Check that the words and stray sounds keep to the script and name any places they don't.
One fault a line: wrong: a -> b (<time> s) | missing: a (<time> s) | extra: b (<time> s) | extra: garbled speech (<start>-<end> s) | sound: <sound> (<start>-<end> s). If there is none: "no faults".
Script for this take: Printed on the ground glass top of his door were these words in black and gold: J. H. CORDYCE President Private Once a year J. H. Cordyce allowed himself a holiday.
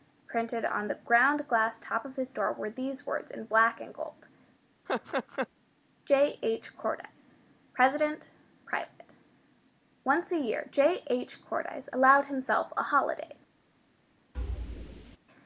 sound: laugh (4.9-5.5 s)
sound: thud (14.3-15.2 s)